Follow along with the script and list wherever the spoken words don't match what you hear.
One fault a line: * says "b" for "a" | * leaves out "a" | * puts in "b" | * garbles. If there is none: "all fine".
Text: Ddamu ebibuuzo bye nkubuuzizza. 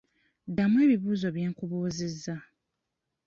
all fine